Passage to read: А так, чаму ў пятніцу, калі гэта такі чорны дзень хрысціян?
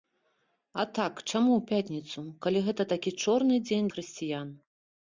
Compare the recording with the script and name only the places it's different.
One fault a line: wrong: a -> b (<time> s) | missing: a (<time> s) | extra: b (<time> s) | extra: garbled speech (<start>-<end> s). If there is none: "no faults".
no faults